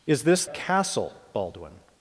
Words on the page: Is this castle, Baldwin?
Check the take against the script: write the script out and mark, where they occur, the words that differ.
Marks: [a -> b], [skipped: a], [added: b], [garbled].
Is this castle, Baldwin?